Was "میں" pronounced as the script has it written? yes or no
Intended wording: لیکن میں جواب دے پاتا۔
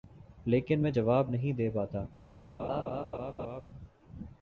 yes